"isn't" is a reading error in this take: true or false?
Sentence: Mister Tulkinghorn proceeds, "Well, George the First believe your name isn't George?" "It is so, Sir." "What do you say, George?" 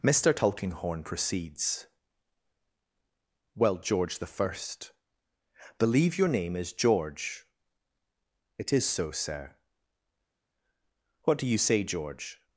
true